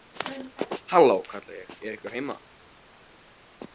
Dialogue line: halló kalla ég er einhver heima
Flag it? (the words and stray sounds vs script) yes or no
no